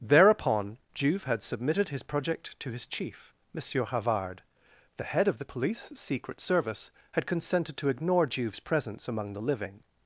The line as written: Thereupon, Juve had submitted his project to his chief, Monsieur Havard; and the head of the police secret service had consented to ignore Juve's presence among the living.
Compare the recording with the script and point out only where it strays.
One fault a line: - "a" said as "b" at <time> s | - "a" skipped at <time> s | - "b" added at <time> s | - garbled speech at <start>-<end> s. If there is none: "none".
- "and" skipped at 4.4 s